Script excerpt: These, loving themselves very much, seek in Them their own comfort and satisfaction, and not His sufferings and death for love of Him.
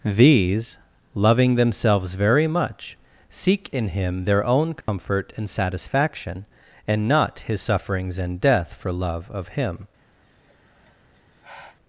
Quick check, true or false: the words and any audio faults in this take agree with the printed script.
false